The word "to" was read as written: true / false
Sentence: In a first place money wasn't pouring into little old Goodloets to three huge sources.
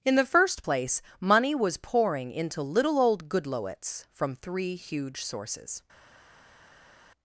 false